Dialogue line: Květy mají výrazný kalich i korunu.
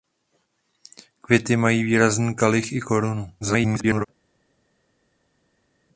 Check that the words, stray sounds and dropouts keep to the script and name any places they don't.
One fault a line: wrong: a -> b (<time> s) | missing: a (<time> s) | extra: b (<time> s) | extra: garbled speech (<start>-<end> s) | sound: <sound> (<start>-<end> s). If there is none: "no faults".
extra: garbled speech (3.4-4.1 s)